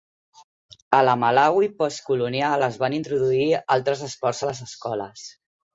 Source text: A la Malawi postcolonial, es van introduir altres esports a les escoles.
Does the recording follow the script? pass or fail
pass